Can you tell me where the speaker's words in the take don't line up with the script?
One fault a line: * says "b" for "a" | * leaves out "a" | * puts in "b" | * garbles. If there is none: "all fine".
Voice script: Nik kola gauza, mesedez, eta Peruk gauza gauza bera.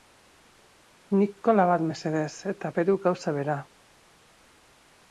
* says "bat" for "gauza"
* leaves out "gauza"